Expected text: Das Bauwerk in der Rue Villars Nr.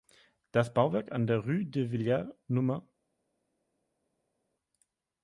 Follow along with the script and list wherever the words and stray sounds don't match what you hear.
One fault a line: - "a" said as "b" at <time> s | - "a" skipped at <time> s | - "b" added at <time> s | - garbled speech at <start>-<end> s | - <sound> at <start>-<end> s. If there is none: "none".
- "in" said as "an" at 1.1 s
- "de" added at 1.6 s